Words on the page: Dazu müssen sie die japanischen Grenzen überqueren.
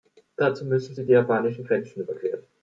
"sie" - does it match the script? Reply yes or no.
yes